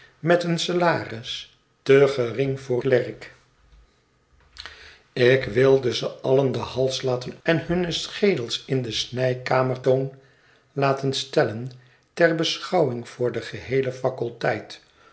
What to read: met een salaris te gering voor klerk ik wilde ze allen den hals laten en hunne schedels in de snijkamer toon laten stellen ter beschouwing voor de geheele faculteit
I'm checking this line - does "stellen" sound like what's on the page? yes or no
yes